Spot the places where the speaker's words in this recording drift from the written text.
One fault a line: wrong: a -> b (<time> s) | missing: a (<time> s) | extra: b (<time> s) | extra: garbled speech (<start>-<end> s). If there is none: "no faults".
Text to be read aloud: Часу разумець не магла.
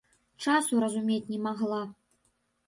no faults